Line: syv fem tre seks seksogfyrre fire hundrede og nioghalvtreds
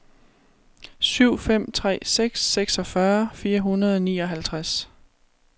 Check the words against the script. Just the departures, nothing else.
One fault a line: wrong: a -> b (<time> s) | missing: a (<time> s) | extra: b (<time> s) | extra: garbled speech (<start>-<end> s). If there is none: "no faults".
no faults